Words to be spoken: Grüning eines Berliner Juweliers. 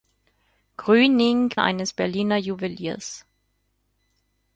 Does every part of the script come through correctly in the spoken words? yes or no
yes